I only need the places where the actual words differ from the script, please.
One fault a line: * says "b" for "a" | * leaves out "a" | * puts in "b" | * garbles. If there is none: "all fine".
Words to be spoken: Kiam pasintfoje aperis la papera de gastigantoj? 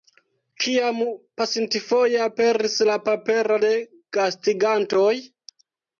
all fine